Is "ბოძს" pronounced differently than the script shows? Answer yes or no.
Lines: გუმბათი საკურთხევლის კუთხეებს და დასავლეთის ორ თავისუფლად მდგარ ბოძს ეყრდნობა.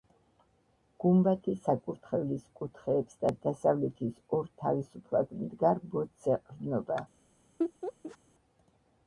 no